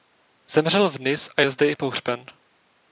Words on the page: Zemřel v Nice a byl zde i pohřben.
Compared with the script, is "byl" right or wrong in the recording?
wrong